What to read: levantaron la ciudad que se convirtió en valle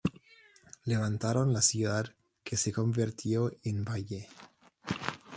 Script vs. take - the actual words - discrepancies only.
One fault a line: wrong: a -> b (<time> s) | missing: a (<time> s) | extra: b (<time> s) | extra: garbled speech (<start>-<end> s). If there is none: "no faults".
no faults